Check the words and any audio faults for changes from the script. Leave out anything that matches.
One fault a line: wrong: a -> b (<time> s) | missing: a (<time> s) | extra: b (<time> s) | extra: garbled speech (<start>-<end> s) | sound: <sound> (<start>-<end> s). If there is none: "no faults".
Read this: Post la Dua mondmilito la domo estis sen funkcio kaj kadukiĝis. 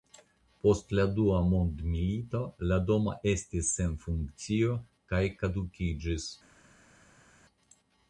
no faults